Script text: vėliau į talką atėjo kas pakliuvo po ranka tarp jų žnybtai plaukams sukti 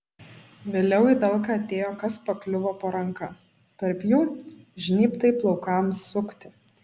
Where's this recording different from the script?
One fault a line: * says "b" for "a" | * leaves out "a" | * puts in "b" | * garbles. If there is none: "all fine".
all fine